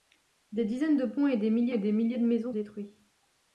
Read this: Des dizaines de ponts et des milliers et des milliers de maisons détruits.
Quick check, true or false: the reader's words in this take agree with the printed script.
true